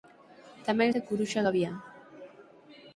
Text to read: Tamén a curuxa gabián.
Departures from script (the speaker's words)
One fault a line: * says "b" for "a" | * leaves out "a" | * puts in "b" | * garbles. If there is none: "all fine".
all fine